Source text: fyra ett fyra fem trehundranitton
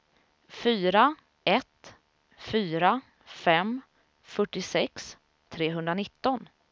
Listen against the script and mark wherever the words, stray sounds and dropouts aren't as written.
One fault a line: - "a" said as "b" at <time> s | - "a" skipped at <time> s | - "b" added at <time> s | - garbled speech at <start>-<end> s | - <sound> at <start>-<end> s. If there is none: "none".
- "fyrtiosex" added at 4.2 s